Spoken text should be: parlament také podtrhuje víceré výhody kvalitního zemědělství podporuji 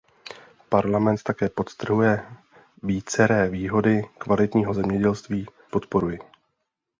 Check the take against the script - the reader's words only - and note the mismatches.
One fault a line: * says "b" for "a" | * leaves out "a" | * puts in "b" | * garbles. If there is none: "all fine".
all fine